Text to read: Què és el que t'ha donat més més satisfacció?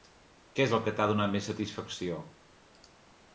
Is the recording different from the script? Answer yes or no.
yes